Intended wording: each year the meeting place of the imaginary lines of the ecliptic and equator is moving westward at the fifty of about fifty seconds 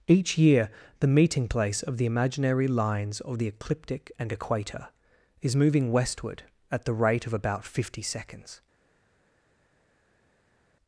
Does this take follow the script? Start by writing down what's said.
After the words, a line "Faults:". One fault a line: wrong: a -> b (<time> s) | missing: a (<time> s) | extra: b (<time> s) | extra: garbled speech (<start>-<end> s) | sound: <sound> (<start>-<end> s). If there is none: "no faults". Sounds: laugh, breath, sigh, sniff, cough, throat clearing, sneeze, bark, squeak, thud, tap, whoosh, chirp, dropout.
each year the meeting place of the imaginary lines of the ecliptic and equator is moving westward at the rate of about fifty seconds
Faults:
wrong: fifty -> rate (6.9 s)